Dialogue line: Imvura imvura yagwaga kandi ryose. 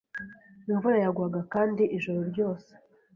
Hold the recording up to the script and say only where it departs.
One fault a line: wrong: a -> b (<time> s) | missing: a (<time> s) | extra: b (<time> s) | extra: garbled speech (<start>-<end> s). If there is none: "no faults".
missing: imvura (1.0 s)
extra: ijoro (2.0 s)